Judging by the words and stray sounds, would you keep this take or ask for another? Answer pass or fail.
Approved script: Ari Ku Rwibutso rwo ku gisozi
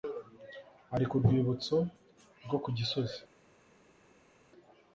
pass